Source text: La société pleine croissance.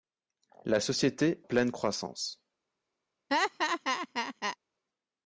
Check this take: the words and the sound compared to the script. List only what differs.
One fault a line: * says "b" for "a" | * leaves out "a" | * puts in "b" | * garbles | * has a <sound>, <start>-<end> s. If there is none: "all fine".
* has a laugh, 3.3-4.6 s